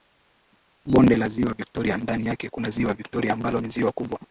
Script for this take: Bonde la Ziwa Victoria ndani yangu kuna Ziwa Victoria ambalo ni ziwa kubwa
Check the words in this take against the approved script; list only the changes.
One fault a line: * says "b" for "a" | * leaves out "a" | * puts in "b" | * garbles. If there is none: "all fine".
* says "yake" for "yangu"